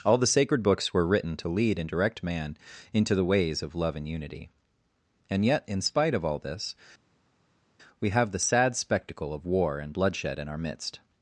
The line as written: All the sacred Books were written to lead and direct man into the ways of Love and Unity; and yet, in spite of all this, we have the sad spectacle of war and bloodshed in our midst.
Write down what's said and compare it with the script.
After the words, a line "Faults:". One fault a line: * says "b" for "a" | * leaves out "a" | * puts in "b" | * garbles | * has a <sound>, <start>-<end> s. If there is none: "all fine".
All the sacred Books were written to lead and direct man into the ways of Love and Unity; and yet, in spite of all this, we have the sad spectacle of war and bloodshed in our midst.
Faults:
all fine